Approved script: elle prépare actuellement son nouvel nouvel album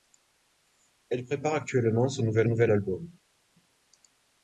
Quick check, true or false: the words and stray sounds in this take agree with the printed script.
true